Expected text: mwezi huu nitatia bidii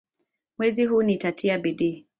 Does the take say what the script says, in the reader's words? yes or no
yes